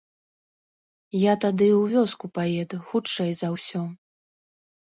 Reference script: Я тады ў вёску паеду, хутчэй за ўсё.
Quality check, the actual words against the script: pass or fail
pass